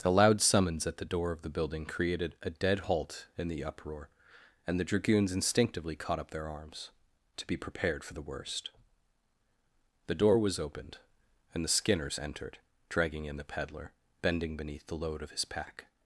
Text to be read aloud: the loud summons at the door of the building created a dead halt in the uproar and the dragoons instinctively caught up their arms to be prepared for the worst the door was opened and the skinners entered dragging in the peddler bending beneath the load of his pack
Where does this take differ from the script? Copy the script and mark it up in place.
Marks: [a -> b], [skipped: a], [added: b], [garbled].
the loud summons at the door of the building created a dead halt in the uproar and the dragoons instinctively caught up their arms to be prepared for the worst the door was opened and the skinners entered dragging in the peddler bending beneath the load of his pack